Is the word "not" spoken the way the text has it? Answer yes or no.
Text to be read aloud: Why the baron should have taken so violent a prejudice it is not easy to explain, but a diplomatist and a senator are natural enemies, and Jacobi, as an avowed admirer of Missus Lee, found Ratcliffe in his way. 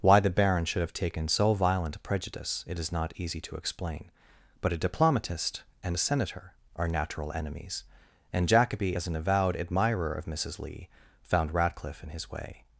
yes